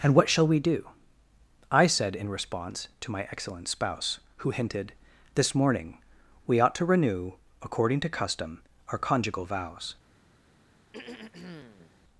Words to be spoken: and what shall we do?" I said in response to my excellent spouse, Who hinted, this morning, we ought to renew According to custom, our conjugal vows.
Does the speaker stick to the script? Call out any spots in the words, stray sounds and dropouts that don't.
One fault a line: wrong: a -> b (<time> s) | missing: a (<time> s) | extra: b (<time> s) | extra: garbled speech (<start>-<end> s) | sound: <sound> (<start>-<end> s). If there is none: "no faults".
sound: throat clearing (10.9-12.0 s)